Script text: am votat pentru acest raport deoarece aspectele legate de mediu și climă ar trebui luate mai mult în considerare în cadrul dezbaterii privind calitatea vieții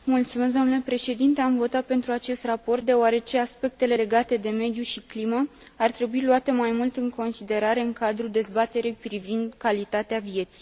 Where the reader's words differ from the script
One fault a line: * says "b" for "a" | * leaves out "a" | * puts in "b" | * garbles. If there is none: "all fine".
all fine